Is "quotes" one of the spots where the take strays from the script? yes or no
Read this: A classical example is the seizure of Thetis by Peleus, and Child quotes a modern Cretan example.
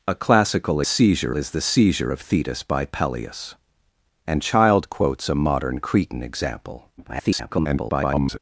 no